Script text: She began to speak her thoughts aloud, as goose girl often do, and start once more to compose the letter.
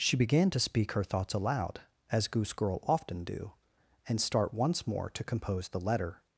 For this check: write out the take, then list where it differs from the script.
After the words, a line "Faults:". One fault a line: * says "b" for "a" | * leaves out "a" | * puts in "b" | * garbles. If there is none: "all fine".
She began to speak her thoughts aloud, as goose girl often do, and start once more to compose the letter.
Faults:
all fine